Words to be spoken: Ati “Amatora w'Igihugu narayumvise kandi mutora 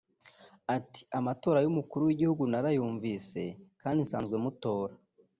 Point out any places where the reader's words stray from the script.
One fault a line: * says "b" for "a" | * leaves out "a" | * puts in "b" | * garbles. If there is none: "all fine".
* puts in "y'Umukuru"
* puts in "nsanzwe"